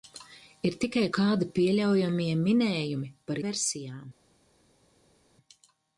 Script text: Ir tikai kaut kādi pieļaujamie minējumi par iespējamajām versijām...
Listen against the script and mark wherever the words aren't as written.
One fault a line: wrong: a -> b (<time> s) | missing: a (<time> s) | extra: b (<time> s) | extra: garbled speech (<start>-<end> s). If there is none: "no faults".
missing: kaut (1.0 s)
missing: iespējamajām (3.4 s)